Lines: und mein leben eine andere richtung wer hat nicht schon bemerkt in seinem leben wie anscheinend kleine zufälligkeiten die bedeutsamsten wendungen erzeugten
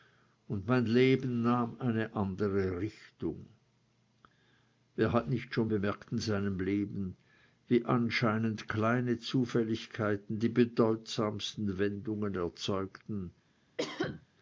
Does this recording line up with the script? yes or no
no